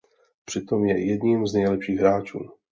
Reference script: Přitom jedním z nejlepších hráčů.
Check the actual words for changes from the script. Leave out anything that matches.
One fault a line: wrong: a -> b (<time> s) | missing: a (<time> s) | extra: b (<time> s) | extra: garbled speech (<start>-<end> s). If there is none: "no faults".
extra: je (0.8 s)